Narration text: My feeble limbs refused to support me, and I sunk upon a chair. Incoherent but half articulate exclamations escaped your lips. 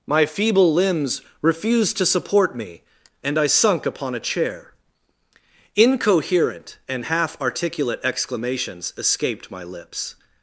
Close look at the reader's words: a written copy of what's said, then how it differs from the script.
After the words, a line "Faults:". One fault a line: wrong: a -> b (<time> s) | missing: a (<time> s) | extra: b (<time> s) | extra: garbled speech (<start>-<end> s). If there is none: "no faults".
My feeble limbs refused to support me, and I sunk upon a chair. Incoherent and half articulate exclamations escaped my lips.
Faults:
wrong: but -> and (6.9 s)
wrong: your -> my (9.5 s)